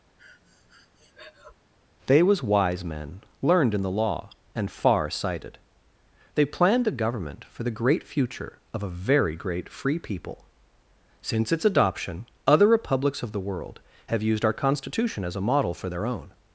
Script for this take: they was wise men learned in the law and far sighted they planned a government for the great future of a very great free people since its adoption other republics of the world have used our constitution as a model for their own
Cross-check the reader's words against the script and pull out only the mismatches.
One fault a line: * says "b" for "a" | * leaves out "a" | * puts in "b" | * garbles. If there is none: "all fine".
all fine